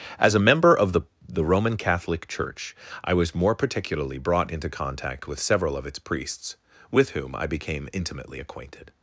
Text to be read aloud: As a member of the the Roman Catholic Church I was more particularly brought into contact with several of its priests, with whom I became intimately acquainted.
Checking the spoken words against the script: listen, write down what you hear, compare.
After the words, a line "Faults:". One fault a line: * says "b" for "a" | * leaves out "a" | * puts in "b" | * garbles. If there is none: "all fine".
As a member of the the Roman Catholic Church I was more particularly brought into contact with several of its priests, with whom I became intimately acquainted.
Faults:
all fine